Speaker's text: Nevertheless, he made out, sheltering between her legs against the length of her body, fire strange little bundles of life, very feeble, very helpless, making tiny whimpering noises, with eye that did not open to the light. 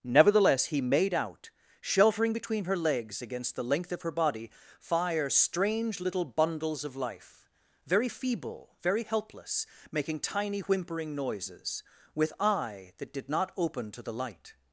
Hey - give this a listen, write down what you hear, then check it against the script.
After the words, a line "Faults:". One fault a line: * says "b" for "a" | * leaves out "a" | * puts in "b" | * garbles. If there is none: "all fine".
Nevertheless, he made out, sheltering between her legs against the length of her body, fire strange little bundles of life, very feeble, very helpless, making tiny whimpering noises, with eye that did not open to the light.
Faults:
all fine